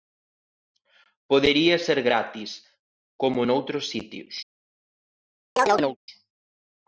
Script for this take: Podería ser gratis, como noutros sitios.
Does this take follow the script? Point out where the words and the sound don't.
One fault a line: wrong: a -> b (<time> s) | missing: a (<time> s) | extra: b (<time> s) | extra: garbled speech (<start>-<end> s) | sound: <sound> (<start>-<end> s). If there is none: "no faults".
sound: chirp (5.6-6.0 s)